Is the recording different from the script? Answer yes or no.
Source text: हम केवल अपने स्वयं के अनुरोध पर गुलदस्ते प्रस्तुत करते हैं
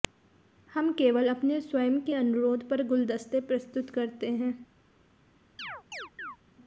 no